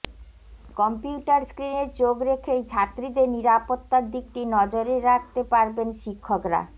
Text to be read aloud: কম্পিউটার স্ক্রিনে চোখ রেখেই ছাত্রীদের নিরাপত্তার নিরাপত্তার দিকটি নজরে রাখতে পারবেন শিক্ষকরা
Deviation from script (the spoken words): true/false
true